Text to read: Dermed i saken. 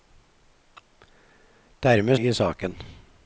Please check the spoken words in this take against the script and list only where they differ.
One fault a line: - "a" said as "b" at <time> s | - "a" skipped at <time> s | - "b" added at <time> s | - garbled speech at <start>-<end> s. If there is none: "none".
none